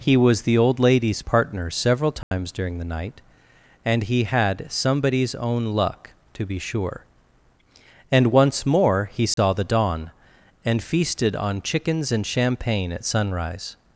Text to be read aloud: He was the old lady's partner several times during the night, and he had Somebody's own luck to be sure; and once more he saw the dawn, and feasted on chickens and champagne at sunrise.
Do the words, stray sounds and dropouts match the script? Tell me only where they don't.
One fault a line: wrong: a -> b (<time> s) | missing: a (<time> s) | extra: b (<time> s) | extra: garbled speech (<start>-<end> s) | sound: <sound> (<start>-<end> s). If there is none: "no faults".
sound: dropout (2.2-2.3 s)
sound: dropout (9.3-9.4 s)